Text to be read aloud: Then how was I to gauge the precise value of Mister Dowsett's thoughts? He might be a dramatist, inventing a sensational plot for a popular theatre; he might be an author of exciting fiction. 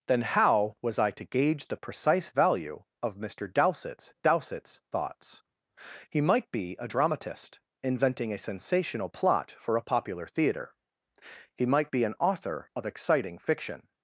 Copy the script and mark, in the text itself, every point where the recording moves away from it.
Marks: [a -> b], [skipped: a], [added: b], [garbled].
Then how was I to gauge the precise value of Mister Dowsett's [added: Dowsett's] thoughts? He might be a dramatist, inventing a sensational plot for a popular theatre; he might be an author of exciting fiction.